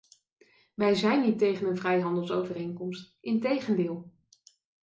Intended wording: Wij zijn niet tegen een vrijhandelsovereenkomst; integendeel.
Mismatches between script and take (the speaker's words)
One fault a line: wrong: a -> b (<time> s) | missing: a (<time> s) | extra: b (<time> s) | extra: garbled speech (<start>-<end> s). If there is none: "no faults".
no faults